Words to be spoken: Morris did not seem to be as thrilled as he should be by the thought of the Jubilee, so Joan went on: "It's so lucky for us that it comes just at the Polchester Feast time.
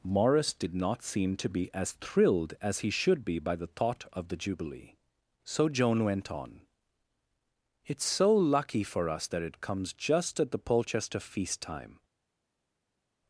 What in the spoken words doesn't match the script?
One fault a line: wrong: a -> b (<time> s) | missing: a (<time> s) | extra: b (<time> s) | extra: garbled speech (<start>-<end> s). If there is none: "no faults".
no faults